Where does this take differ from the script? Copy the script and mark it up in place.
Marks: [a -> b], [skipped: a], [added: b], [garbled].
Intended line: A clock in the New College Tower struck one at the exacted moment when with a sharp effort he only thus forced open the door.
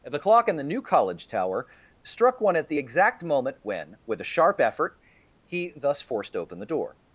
[A -> The] clock in the New College Tower struck one at the [exacted -> exact] moment when with a sharp effort he [skipped: only] thus forced open the door.